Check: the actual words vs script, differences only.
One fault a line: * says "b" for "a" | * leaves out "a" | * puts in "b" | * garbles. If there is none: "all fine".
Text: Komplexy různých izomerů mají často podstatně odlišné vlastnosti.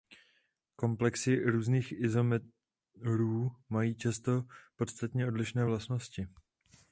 all fine